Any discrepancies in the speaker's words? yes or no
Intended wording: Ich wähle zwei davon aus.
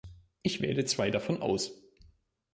no